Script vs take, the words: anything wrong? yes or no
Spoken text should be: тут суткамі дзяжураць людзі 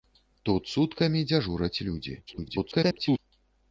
yes